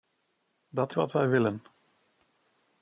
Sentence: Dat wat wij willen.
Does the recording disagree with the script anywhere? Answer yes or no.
no